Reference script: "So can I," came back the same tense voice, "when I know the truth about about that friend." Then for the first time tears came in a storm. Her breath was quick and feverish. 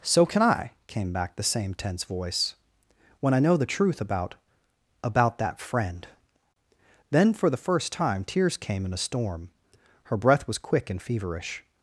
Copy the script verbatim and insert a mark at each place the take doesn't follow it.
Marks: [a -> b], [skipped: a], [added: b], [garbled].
"So can I," came back the same tense voice, "when I know the truth about about that friend." Then for the first time tears came in a storm. Her breath was quick and feverish.